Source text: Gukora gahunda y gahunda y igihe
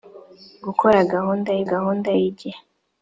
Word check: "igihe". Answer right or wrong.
right